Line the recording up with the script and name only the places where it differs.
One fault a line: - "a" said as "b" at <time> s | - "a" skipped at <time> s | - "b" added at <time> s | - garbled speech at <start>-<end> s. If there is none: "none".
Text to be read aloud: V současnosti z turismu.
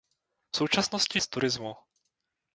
none